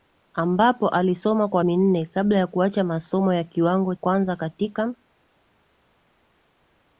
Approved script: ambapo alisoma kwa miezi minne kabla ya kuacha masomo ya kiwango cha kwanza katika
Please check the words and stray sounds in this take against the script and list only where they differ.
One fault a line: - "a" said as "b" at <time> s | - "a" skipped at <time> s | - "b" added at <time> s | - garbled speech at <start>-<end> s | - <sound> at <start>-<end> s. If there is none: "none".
- "miezi" skipped at 1.6 s
- "cha" skipped at 3.9 s